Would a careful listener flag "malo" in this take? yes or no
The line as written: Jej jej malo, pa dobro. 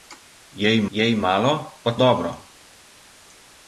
no